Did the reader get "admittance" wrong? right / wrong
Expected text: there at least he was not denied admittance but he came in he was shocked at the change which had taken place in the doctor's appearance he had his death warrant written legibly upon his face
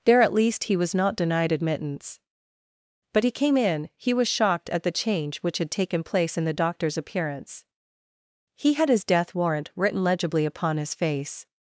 right